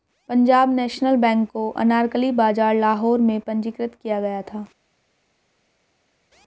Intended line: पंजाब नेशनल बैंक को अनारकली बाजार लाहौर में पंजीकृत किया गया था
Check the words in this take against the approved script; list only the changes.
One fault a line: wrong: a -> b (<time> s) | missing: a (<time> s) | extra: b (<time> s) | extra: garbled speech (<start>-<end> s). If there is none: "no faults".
no faults